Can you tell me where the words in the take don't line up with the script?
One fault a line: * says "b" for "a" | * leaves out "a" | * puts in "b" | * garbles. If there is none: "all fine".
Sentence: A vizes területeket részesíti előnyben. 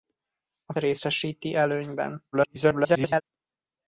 * leaves out "vizes területeket"
* garbles